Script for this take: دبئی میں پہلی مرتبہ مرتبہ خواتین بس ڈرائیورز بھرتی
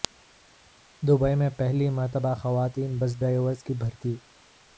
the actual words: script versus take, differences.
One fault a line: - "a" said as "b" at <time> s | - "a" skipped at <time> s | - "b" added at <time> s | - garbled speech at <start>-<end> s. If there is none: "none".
- "مرتبہ" skipped at 2.3 s
- "کی" added at 3.6 s